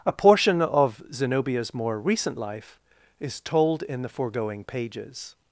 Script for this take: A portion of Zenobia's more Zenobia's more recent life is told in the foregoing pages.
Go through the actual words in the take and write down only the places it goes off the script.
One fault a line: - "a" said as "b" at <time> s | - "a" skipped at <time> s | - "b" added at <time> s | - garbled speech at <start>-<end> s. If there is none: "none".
- "Zenobia's more" skipped at 2.0 s